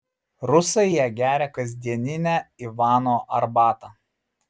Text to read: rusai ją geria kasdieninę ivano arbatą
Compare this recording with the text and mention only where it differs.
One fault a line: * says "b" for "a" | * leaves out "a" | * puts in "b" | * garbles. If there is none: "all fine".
all fine